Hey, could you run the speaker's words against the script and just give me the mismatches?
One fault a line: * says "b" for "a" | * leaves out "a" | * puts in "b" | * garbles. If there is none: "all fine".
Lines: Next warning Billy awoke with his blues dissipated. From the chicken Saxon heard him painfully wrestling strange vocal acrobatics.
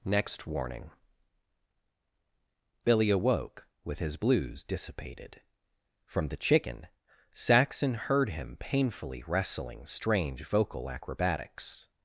all fine